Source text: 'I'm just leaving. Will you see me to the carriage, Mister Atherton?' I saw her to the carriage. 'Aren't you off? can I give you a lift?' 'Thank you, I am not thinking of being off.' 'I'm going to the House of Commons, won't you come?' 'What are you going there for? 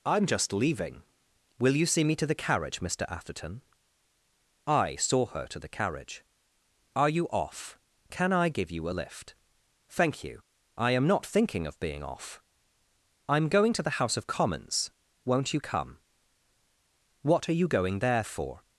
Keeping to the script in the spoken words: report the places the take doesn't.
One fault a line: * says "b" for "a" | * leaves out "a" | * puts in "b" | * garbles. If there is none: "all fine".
* says "Are" for "Aren't"